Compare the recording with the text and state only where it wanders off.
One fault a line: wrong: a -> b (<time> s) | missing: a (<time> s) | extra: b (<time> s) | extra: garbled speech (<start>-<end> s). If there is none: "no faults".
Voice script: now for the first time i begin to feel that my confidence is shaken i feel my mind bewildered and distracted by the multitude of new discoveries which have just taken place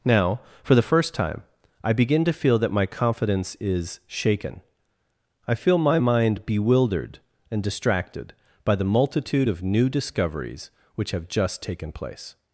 no faults